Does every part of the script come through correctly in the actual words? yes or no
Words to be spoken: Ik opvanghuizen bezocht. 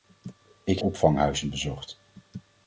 yes